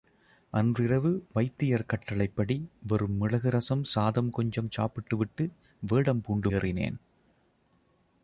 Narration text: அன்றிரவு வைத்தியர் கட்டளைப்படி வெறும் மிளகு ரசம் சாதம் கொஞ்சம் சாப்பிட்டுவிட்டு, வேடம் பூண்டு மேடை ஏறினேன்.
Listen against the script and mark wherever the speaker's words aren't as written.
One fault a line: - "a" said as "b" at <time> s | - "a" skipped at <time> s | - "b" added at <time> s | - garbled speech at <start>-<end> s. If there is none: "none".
- "மேடை" skipped at 6.5 s